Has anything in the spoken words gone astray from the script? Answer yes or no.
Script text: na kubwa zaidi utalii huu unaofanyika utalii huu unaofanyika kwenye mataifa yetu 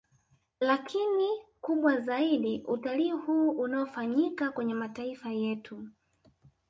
yes